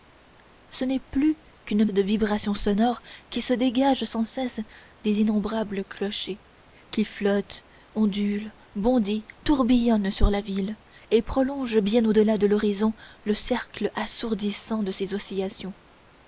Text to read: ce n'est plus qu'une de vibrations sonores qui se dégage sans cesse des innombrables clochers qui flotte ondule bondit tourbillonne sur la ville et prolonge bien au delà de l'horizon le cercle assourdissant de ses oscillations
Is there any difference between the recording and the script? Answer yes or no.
no